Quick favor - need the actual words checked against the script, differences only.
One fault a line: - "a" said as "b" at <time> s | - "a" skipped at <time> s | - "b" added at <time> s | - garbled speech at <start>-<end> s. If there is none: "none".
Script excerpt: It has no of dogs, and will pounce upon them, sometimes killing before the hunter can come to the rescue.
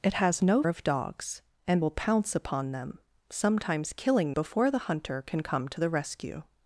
none